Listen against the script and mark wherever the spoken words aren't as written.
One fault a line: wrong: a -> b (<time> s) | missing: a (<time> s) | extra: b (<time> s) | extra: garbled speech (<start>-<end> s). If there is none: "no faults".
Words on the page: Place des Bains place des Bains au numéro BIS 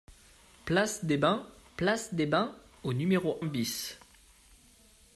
no faults